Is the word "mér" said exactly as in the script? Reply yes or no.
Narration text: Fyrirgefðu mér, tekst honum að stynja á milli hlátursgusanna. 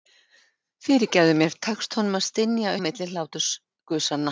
yes